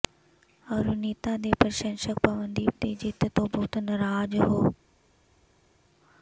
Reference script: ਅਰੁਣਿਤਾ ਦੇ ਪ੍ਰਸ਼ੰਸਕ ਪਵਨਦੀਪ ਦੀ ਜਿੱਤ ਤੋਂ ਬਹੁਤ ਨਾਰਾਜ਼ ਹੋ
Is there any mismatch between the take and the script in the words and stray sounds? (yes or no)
no